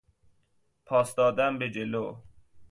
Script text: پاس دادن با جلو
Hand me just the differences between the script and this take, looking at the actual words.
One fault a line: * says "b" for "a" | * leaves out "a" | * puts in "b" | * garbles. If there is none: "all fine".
* says "به" for "با"